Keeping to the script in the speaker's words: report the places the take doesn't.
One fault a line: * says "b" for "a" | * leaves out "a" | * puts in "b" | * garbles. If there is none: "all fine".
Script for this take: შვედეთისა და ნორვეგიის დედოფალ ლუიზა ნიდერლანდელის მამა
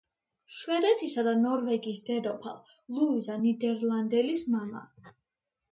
all fine